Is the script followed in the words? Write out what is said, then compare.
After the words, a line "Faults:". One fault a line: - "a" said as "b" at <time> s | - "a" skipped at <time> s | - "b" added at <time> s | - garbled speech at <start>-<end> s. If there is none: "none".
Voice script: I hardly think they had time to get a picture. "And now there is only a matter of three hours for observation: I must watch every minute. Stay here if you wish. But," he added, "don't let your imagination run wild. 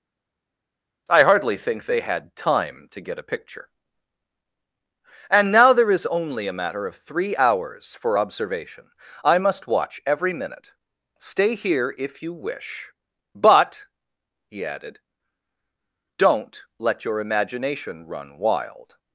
I hardly think they had time to get a picture. "And now there is only a matter of three hours for observation: I must watch every minute. Stay here if you wish. But," he added, "don't let your imagination run wild.
Faults:
none